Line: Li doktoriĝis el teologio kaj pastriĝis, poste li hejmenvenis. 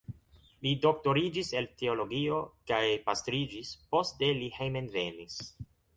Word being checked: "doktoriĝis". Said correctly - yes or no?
yes